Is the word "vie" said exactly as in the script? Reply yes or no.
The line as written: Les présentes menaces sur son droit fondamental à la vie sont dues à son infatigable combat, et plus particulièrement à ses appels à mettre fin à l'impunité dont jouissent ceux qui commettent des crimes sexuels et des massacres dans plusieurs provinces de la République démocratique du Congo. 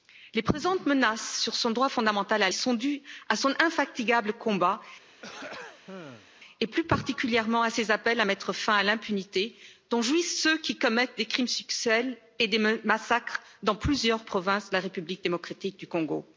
no